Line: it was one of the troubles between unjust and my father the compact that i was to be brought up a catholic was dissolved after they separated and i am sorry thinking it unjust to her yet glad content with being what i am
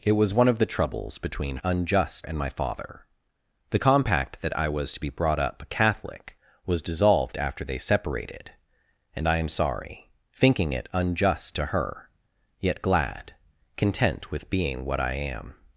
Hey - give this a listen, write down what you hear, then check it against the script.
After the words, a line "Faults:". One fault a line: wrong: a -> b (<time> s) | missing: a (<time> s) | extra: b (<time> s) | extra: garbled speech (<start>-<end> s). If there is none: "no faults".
it was one of the troubles between unjust and my father the compact that i was to be brought up a catholic was dissolved after they separated and i am sorry thinking it unjust to her yet glad content with being what i am
Faults:
no faults